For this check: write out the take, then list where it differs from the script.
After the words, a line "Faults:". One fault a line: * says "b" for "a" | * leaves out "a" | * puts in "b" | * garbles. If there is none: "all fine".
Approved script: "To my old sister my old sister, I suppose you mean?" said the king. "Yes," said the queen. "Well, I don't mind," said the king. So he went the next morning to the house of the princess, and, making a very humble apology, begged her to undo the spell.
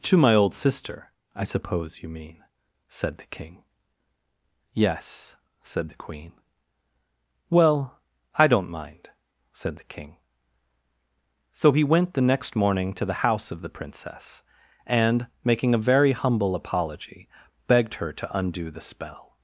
"To my old sister, I suppose you mean?" said the king. "Yes," said the queen. "Well, I don't mind," said the king. So he went the next morning to the house of the princess, and, making a very humble apology, begged her to undo the spell.
Faults:
* leaves out "my old sister"